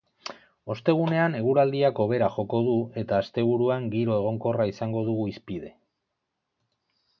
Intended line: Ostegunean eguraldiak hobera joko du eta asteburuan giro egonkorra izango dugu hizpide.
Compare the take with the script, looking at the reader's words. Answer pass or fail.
pass